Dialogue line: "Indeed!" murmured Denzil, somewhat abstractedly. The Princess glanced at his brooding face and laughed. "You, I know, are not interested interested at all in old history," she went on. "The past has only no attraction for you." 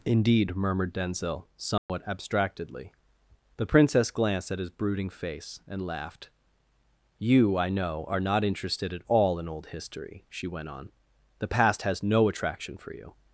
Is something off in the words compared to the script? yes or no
yes